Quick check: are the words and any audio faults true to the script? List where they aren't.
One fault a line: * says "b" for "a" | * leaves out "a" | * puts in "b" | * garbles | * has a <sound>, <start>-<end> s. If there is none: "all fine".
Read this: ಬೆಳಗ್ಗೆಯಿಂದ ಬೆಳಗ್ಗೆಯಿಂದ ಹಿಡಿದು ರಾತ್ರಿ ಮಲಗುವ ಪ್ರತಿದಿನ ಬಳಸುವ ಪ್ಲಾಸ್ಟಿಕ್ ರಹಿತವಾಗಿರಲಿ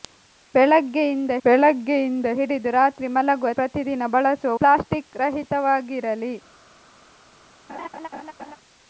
* has a laugh, 7.7-8.6 s